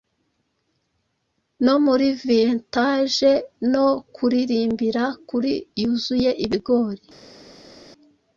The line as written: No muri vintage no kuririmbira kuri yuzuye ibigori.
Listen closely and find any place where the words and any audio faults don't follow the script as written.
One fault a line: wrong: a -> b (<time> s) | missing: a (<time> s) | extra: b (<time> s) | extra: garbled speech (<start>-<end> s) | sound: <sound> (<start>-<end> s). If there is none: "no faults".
no faults